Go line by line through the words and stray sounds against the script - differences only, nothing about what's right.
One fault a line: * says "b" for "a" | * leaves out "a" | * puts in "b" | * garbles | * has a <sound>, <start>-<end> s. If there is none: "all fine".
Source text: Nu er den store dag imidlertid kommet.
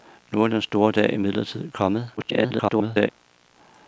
* garbles